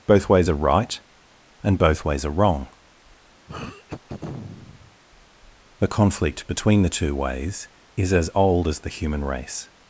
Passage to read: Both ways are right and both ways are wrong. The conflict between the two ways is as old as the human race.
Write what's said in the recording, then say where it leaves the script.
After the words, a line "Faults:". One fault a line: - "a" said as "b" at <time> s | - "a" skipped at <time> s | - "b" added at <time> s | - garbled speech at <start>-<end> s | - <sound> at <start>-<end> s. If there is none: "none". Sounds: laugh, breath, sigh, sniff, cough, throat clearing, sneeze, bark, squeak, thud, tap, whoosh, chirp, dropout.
Both ways are right and both ways are wrong. The conflict between the two ways is as old as the human race.
Faults:
- throat clearing at 3.5-5.0 s